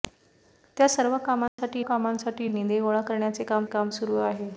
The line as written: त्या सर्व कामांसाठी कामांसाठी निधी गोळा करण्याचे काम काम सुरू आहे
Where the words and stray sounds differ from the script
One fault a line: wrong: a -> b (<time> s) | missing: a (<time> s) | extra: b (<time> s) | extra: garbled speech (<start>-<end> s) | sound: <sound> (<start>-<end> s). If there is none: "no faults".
sound: dropout (1.5-1.6 s)